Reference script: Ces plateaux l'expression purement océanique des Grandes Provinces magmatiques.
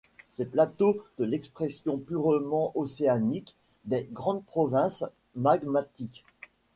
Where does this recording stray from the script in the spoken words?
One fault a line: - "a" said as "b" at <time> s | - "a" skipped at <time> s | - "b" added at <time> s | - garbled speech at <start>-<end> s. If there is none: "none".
none